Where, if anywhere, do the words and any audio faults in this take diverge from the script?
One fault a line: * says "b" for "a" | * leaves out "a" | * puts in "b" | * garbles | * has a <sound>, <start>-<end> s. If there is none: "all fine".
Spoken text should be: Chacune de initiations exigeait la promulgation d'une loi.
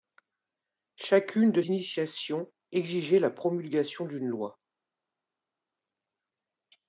all fine